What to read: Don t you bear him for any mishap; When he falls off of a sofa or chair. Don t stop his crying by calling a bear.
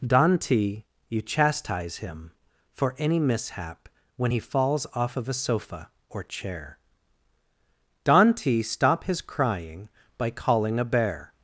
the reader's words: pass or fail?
fail